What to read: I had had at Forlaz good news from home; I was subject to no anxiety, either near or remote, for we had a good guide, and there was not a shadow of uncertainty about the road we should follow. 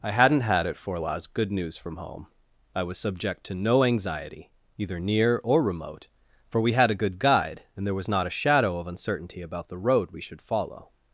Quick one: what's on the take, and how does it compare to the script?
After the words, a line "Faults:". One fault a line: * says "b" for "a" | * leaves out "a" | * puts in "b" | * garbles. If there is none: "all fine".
I hadn't had at Forlaz good news from home; I was subject to no anxiety, either near or remote, for we had a good guide, and there was not a shadow of uncertainty about the road we should follow.
Faults:
* says "hadn't" for "had"